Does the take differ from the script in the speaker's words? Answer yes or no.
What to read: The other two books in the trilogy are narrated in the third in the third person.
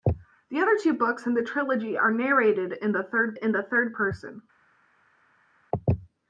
no